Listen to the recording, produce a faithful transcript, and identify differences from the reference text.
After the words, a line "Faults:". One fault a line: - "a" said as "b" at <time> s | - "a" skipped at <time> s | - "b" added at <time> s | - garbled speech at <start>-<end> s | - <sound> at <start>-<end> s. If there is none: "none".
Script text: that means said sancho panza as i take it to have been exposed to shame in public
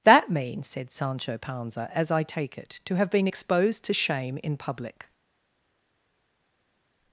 that means said sancho panza as i take it to have been exposed to shame in public
Faults:
none